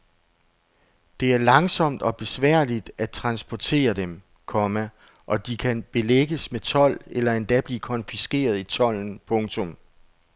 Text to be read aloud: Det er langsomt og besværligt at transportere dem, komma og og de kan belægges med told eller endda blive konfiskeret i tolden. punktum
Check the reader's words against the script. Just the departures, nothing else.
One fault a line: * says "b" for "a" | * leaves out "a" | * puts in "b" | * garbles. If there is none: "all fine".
* leaves out "og"